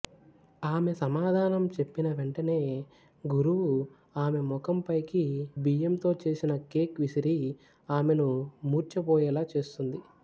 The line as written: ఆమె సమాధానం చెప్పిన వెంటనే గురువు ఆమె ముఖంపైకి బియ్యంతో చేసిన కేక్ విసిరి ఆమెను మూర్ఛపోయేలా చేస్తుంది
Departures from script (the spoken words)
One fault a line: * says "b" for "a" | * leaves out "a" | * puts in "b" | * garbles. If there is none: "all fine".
all fine